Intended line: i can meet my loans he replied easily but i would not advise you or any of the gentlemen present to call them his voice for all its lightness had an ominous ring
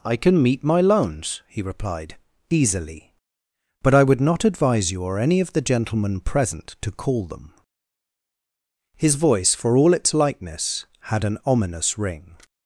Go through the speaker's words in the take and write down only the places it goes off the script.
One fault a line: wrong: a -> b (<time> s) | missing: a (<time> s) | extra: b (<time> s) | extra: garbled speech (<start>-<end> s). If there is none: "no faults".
no faults